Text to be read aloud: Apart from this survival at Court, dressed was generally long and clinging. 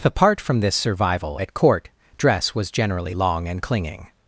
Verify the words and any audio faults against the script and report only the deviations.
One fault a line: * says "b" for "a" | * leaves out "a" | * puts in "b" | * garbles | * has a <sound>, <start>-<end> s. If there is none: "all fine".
* says "dress" for "dressed"